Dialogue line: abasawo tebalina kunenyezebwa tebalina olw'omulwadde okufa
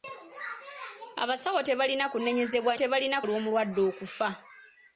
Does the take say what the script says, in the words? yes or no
yes